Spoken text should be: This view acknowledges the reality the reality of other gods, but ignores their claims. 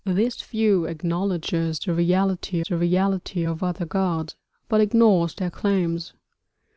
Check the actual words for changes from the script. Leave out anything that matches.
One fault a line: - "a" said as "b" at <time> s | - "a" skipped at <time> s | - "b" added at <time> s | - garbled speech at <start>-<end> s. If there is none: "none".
none